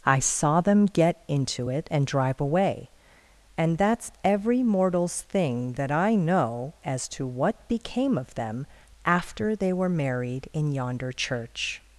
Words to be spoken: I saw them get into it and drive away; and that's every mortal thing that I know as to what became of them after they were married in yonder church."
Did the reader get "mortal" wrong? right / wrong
wrong